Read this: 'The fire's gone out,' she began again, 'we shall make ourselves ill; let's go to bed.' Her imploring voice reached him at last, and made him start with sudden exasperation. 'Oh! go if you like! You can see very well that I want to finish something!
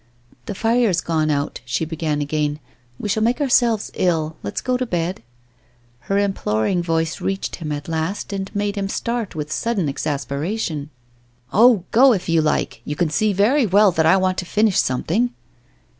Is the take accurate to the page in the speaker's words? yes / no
yes